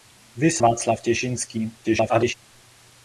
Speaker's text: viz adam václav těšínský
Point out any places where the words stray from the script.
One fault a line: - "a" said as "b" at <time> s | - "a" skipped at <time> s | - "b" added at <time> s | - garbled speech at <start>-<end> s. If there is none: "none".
- "adam" skipped at 0.6 s
- garbled speech at 1.8-2.3 s